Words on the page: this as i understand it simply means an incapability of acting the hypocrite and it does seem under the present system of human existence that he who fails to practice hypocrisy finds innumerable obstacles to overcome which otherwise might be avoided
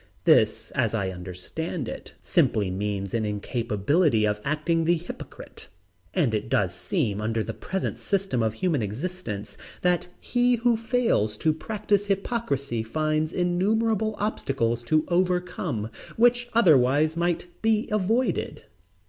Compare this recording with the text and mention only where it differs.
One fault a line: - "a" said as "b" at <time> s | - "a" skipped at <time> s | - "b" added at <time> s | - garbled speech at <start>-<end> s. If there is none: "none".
none